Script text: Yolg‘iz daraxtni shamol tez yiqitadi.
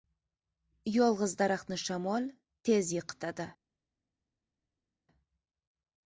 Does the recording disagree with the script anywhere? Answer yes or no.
no